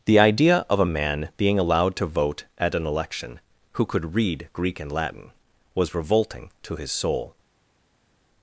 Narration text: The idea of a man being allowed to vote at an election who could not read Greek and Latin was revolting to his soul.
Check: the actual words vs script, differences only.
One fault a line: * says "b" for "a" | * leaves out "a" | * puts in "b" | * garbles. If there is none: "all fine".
* leaves out "not"